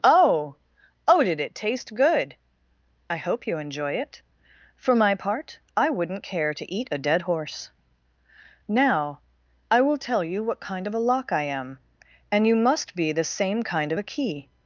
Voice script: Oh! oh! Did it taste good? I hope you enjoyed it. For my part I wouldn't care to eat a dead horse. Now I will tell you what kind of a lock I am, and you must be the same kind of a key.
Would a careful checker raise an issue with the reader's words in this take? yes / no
yes